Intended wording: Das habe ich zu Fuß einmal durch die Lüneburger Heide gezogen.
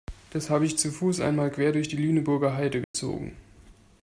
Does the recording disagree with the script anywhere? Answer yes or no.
yes